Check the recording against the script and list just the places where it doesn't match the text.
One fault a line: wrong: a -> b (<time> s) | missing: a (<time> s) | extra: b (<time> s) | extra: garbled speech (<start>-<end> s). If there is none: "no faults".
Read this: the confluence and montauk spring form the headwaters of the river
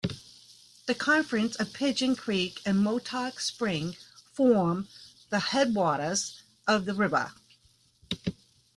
extra: of pigeon creek (1.5 s)